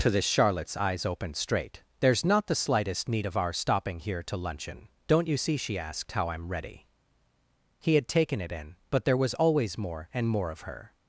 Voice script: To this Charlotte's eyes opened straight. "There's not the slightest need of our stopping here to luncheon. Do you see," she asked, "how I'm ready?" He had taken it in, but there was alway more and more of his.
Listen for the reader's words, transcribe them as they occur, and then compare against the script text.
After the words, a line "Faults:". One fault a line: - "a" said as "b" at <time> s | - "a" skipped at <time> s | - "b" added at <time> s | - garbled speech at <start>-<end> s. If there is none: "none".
To this Charlotte's eyes opened straight. "There's not the slightest need of our stopping here to luncheon. Don't you see," she asked, "how I'm ready?" He had taken it in, but there was always more and more of her.
Faults:
- "Do" said as "Don't" at 5.0 s
- "alway" said as "always" at 9.3 s
- "his" said as "her" at 10.6 s